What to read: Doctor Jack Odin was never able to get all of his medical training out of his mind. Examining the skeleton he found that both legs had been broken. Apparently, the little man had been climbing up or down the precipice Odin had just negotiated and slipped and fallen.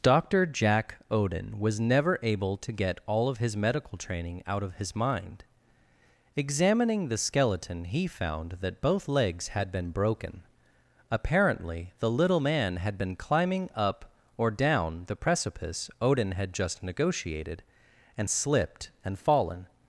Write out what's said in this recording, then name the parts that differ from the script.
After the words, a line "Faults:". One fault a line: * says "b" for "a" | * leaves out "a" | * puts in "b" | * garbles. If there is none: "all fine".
Doctor Jack Odin was never able to get all of his medical training out of his mind. Examining the skeleton he found that both legs had been broken. Apparently, the little man had been climbing up or down the precipice Odin had just negotiated and slipped and fallen.
Faults:
all fine